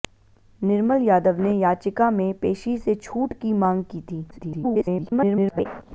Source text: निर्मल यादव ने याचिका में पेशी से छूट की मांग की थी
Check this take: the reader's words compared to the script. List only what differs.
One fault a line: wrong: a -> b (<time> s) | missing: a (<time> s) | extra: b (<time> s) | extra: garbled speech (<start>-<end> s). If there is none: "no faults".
extra: garbled speech (4.3-5.7 s)